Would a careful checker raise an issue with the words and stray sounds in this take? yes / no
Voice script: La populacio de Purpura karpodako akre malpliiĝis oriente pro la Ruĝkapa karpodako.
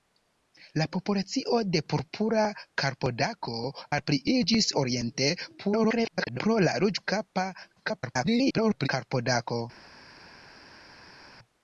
yes